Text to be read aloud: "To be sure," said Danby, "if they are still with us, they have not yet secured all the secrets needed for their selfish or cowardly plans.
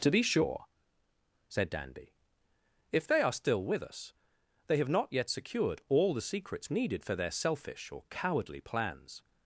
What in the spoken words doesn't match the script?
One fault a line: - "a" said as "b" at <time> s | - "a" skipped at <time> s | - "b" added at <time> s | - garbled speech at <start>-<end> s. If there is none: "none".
none